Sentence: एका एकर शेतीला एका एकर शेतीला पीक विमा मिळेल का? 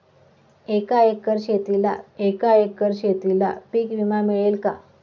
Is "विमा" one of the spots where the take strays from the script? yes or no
no